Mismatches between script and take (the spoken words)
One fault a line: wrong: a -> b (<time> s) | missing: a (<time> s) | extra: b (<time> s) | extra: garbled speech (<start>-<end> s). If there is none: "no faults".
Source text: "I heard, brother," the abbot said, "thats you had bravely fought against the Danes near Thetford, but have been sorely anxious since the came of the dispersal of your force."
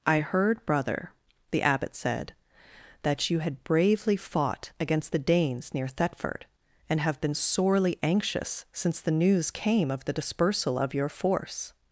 wrong: thats -> that (3.0 s)
wrong: but -> and (6.9 s)
extra: news (9.1 s)